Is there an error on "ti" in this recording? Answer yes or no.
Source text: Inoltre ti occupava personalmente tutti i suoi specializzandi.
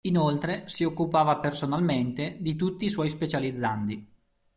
yes